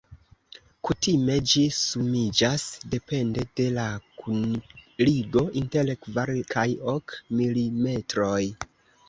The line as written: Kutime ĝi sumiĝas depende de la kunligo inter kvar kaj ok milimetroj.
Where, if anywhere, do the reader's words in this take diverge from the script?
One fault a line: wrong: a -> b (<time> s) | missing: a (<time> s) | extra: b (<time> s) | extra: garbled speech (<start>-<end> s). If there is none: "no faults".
no faults